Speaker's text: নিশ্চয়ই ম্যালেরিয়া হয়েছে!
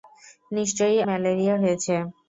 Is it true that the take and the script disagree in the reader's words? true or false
false